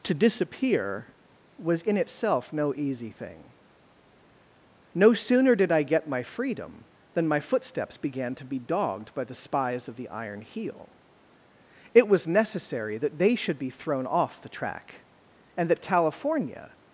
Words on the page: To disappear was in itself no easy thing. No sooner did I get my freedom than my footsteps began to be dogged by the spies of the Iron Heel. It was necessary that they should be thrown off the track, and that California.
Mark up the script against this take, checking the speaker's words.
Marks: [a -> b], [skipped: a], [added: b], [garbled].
To disappear was in itself no easy thing. No sooner did I get my freedom than my footsteps began to be dogged by the spies of the Iron Heel. It was necessary that they should be thrown off the track, and that California.